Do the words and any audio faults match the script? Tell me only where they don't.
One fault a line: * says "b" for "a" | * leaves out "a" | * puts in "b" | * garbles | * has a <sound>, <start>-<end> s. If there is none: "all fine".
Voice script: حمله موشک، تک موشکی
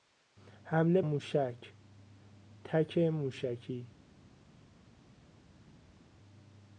all fine